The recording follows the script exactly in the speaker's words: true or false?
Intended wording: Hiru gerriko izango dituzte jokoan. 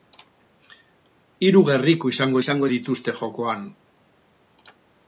false